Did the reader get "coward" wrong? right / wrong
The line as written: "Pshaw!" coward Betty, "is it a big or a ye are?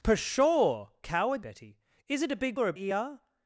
right